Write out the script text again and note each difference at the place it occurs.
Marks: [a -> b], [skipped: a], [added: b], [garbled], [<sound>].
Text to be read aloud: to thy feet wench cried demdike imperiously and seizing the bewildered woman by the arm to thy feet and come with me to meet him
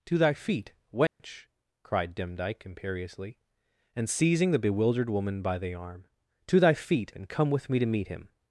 to thy feet wench [dropout] cried demdike imperiously and seizing the bewildered woman by the arm to thy feet and come with me to meet him